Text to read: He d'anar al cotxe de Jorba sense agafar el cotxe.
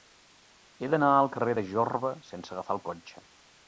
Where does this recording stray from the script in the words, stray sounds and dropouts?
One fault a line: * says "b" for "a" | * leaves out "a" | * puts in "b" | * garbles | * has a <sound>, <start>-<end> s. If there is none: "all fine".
* says "carrer" for "cotxe"